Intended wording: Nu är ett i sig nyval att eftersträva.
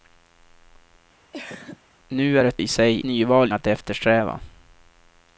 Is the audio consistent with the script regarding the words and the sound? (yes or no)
no